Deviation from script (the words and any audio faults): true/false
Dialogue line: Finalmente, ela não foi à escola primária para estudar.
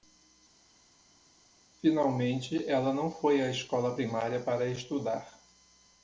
false